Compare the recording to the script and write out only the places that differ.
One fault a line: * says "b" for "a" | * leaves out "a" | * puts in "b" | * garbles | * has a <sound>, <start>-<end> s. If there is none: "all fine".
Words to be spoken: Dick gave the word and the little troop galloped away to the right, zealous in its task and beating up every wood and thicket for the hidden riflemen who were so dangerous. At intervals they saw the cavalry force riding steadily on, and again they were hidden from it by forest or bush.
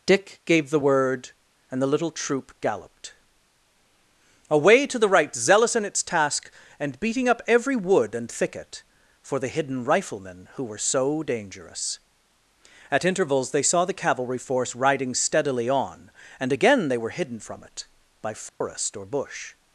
* has a dropout, 18.5-18.6 s